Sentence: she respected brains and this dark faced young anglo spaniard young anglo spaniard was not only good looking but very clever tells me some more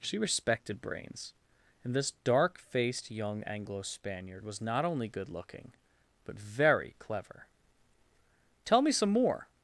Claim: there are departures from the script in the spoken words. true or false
true